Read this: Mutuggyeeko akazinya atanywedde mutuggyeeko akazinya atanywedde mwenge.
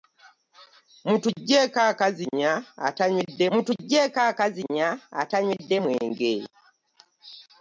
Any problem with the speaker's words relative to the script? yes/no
no